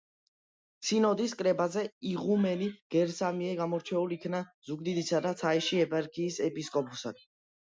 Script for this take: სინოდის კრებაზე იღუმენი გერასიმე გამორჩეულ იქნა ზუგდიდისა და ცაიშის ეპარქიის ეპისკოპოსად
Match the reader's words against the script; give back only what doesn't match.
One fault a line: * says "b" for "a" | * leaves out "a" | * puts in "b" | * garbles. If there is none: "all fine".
all fine